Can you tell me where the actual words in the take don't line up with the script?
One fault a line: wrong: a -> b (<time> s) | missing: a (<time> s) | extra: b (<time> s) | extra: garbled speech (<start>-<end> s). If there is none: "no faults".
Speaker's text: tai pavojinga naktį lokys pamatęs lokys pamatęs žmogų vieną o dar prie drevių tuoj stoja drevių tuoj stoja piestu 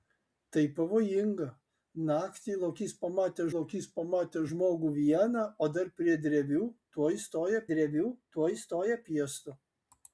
no faults